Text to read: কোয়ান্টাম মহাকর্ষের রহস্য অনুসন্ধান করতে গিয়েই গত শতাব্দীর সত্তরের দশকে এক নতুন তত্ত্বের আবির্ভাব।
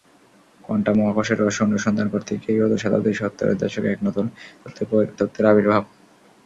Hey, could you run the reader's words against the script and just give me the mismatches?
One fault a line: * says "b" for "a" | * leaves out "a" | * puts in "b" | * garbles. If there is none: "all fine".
all fine